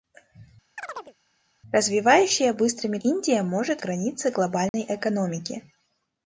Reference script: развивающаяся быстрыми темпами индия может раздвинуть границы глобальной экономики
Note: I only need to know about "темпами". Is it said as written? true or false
false